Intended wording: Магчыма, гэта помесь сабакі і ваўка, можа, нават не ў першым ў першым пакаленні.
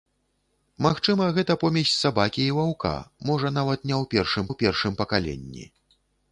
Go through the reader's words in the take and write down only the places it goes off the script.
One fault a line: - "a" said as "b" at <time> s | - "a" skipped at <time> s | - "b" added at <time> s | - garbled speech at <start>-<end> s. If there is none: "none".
none